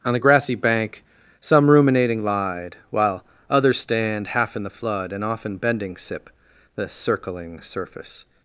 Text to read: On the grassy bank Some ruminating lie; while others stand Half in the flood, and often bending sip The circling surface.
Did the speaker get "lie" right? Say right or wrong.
wrong